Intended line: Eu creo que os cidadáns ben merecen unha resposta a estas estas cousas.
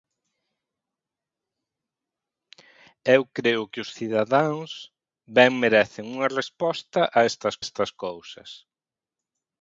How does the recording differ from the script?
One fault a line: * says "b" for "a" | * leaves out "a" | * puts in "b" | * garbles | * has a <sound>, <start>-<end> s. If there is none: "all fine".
all fine